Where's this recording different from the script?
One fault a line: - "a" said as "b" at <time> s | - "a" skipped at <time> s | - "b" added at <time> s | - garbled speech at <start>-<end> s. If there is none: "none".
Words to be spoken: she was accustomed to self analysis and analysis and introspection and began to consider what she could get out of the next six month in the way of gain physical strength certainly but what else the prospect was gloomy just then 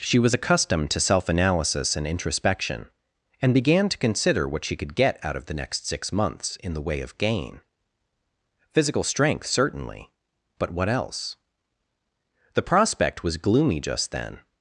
- "analysis and" skipped at 2.1 s
- "month" said as "months" at 6.1 s